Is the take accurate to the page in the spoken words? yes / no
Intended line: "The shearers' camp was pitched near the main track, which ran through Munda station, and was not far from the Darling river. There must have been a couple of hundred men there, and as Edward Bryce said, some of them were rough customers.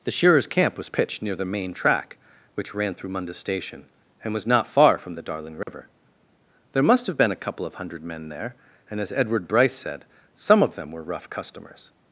yes